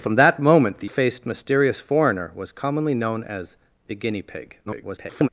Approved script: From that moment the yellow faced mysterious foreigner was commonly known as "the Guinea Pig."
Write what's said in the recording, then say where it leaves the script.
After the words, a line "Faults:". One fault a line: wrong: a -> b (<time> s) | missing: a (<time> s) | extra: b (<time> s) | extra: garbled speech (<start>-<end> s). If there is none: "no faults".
From that moment the faced mysterious foreigner was commonly known as "the Guinea Pig." [garbled]
Faults:
missing: yellow (0.9 s)
extra: garbled speech (4.7-5.3 s)